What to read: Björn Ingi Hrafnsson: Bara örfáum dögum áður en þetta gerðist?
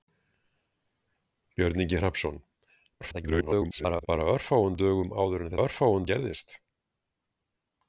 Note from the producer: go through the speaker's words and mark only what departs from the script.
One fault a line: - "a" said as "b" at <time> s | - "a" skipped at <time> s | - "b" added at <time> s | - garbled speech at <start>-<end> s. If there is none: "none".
- garbled speech at 3.0-4.1 s
- "þetta" said as "örfáum" at 5.6 s